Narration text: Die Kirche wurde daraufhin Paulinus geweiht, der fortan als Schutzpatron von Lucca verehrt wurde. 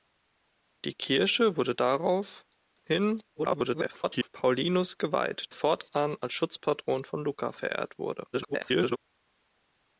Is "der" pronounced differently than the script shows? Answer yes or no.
yes